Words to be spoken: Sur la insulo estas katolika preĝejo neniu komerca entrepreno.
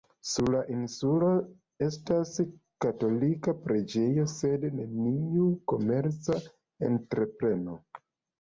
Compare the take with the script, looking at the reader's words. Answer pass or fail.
fail